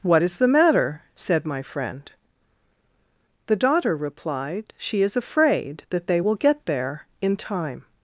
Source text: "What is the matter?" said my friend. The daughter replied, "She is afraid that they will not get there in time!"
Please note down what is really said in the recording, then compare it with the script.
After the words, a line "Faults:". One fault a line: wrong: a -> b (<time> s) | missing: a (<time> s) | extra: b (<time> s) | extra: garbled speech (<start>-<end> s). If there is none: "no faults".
"What is the matter?" said my friend. The daughter replied, "She is afraid that they will get there in time!"
Faults:
missing: not (6.3 s)